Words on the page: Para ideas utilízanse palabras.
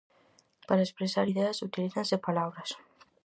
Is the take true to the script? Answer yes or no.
no